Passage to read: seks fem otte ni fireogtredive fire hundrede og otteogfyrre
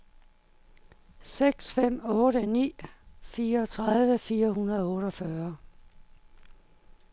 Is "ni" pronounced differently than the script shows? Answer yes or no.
no